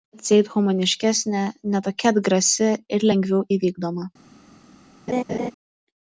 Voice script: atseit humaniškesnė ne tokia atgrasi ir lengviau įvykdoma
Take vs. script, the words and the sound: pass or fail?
fail